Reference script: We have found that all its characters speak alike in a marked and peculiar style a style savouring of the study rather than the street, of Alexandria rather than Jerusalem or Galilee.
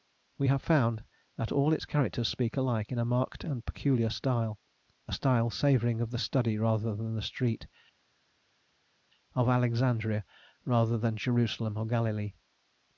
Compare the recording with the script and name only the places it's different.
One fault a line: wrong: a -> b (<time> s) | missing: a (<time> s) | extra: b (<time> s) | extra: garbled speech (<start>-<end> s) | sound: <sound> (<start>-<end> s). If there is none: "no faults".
no faults